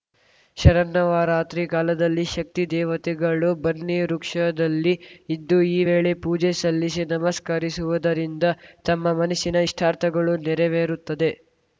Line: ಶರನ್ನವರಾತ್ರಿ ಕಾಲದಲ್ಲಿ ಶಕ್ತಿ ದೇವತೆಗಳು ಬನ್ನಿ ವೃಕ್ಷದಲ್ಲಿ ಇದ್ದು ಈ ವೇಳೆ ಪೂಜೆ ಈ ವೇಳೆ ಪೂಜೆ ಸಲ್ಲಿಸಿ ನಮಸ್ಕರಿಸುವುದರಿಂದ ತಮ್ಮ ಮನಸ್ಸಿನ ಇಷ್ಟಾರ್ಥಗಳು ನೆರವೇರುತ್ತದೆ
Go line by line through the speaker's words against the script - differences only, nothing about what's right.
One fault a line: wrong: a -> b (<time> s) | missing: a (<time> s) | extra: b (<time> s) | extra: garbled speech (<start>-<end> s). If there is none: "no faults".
missing: ಈ ವೇಳೆ ಪೂಜೆ (6.5 s)